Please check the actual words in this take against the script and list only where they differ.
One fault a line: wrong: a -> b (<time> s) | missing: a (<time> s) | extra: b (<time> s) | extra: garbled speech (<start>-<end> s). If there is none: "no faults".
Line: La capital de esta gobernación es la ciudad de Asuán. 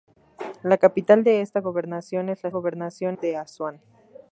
wrong: ciudad -> gobernación (2.5 s)